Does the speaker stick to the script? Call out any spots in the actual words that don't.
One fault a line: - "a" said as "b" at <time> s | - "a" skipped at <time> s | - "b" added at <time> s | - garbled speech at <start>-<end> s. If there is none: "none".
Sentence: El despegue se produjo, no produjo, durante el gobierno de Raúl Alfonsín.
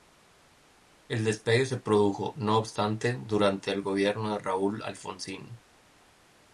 - "produjo" said as "obstante" at 2.6 s